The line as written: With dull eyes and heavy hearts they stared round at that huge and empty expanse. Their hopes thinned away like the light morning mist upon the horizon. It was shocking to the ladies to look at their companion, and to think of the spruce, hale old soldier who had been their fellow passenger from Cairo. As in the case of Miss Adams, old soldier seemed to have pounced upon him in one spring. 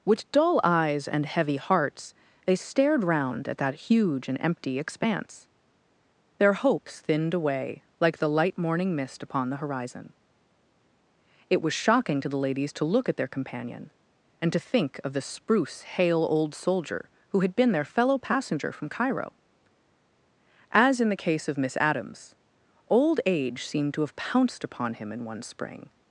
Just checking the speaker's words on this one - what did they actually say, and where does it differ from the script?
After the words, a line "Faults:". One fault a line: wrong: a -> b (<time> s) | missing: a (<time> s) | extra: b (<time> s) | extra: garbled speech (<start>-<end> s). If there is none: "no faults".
With dull eyes and heavy hearts they stared round at that huge and empty expanse. Their hopes thinned away like the light morning mist upon the horizon. It was shocking to the ladies to look at their companion, and to think of the spruce, hale old soldier who had been their fellow passenger from Cairo. As in the case of Miss Adams, old age seemed to have pounced upon him in one spring.
Faults:
wrong: soldier -> age (23.3 s)